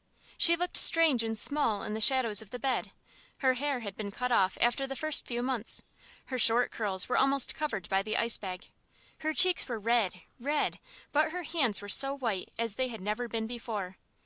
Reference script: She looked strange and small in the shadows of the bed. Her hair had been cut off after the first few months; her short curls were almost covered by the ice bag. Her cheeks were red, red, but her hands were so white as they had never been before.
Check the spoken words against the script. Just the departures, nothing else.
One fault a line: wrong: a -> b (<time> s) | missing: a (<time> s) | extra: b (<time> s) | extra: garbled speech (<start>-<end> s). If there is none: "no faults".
no faults